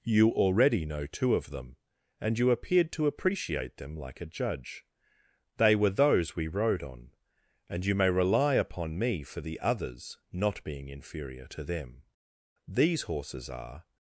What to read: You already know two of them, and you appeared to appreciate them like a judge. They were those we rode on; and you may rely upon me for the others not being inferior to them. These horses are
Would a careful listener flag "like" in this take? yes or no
no